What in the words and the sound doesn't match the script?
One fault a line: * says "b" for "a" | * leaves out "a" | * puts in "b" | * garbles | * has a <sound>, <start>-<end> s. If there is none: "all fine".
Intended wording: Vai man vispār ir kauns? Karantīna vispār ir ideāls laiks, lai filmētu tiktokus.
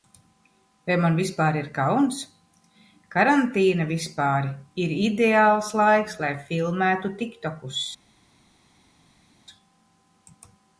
all fine